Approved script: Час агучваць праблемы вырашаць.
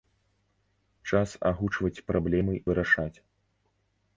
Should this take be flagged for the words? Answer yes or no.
no